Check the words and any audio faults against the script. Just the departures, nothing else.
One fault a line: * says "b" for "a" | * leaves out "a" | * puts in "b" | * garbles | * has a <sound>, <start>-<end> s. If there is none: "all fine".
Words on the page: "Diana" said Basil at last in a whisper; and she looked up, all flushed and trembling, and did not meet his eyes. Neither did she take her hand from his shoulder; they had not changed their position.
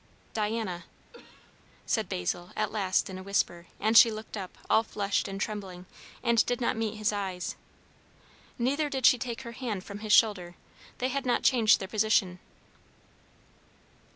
* has a cough, 1.1-1.6 s